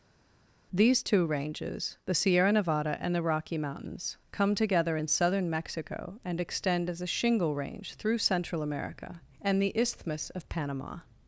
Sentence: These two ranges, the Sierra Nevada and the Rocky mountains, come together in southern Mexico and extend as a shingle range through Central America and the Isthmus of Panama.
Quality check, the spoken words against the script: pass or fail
pass